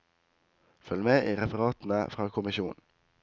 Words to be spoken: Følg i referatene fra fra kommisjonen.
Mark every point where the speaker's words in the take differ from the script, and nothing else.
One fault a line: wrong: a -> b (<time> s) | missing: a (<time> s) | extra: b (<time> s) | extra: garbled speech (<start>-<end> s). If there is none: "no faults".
extra: med (1.0 s)
missing: fra (2.3 s)